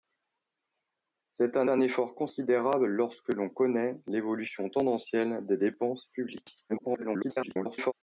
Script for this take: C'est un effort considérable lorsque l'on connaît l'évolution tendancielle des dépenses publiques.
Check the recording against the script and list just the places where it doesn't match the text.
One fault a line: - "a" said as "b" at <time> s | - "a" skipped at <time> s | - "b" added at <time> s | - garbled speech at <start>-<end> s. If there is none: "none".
- "un" added at 1.7 s
- garbled speech at 6.7-7.9 s